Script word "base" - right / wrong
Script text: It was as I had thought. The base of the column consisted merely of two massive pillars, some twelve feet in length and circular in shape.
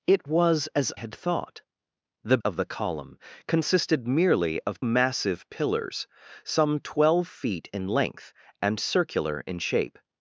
wrong